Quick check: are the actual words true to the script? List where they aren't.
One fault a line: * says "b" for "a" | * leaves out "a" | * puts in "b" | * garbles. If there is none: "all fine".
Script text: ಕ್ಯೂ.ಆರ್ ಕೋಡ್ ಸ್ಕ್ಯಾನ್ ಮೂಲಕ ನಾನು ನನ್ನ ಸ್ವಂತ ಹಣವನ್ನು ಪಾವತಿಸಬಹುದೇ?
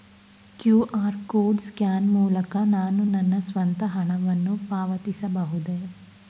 all fine